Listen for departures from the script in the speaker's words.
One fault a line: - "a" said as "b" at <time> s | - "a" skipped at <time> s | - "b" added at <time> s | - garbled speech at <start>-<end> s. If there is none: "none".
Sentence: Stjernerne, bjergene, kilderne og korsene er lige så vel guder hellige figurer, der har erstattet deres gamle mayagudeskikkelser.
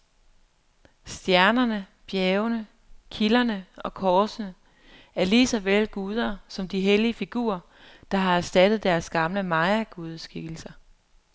- "som de" added at 6.5 s